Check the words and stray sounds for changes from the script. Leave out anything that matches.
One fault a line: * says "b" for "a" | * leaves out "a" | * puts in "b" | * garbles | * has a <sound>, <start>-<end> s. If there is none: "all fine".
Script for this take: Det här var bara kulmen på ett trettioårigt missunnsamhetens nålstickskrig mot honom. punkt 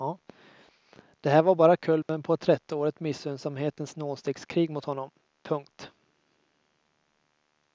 * has a dropout, 2.0-2.1 s